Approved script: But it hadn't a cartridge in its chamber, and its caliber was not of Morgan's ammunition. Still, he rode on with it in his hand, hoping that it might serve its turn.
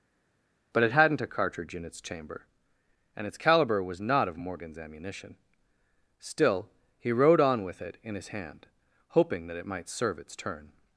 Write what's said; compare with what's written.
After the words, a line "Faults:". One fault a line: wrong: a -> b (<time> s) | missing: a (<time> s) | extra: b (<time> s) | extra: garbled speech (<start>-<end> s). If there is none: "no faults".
But it hadn't a cartridge in its chamber, and its caliber was not of Morgan's ammunition. Still, he rode on with it in his hand, hoping that it might serve its turn.
Faults:
no faults